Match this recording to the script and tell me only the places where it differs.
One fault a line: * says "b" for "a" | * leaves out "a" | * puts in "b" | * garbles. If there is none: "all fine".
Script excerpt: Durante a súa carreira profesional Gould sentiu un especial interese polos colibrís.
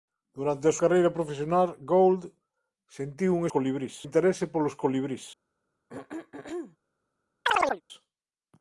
* leaves out "súa"
* says "colibrís" for "especial"